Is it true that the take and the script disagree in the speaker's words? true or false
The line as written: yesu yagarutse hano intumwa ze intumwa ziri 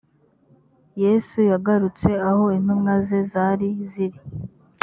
true